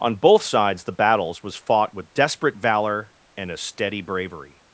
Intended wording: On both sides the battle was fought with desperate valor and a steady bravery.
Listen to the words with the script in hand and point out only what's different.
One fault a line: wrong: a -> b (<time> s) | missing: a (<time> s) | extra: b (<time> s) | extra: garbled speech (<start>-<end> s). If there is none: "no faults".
wrong: battle -> battles (0.9 s)